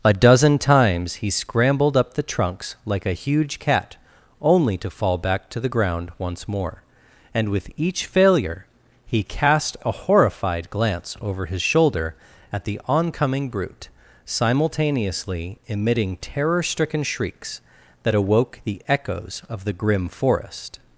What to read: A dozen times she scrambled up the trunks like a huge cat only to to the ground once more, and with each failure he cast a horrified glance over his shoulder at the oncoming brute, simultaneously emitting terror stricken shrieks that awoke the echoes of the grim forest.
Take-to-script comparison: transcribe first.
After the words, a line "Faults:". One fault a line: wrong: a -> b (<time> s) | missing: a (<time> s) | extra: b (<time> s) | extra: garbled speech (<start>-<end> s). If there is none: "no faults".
A dozen times he scrambled up the trunks like a huge cat only to fall back to the ground once more, and with each failure he cast a horrified glance over his shoulder at the oncoming brute, simultaneously emitting terror stricken shrieks that awoke the echoes of the grim forest.
Faults:
wrong: she -> he (1.1 s)
extra: fall back (4.9 s)